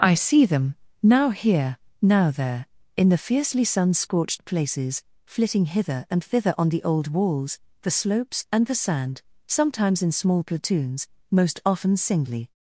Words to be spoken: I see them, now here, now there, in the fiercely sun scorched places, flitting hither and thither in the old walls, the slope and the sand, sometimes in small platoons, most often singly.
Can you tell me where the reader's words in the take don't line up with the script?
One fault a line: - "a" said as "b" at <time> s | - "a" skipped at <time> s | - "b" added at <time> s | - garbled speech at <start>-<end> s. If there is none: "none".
- "in" said as "on" at 6.6 s
- "slope" said as "slopes" at 7.9 s